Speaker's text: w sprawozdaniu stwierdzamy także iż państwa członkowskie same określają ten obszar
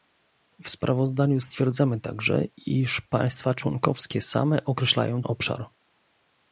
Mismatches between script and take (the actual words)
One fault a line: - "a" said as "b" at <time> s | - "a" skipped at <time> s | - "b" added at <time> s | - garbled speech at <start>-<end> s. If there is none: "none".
- "ten" skipped at 5.2 s